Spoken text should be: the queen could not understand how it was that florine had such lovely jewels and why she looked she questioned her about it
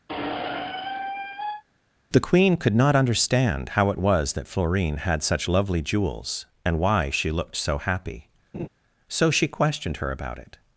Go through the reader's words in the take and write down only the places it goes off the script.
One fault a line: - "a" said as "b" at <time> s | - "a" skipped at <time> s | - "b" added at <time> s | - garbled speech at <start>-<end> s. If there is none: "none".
- "so happy so" added at 7.5 s